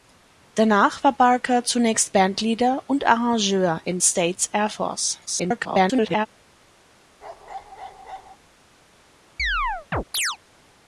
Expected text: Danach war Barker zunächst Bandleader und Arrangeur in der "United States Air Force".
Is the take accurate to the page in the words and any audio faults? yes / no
no